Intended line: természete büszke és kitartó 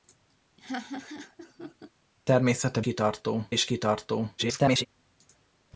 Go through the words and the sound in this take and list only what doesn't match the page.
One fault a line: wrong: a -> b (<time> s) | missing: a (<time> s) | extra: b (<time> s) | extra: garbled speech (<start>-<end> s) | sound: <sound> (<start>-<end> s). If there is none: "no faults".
sound: laugh (0.6-1.9 s)
wrong: büszke -> kitartó (2.8 s)
extra: garbled speech (4.4-4.9 s)